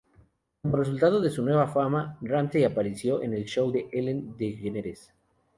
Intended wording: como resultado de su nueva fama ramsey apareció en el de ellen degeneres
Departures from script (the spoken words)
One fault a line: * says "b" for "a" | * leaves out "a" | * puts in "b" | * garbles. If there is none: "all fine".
* puts in "show"